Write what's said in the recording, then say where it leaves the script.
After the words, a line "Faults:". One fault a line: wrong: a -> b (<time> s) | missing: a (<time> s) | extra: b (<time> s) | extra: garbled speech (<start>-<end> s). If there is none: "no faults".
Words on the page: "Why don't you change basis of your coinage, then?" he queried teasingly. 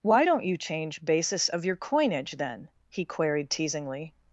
"Why don't you change basis of your coinage, then?" he queried teasingly.
Faults:
no faults